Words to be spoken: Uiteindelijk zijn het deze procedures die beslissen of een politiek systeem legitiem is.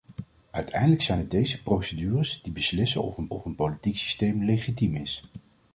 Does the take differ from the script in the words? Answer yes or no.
yes